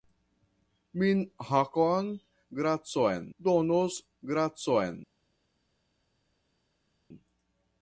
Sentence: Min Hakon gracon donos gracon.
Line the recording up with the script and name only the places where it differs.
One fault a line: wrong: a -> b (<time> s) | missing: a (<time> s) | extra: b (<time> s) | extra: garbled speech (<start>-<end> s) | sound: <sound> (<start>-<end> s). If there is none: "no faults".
no faults